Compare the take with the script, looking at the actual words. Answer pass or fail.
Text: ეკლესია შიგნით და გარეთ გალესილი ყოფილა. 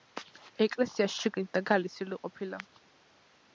fail